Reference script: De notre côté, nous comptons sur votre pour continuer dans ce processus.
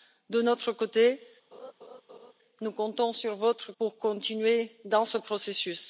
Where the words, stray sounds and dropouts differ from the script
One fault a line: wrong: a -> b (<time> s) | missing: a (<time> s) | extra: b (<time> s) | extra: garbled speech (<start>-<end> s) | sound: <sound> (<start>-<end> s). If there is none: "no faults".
sound: laugh (1.5-2.3 s)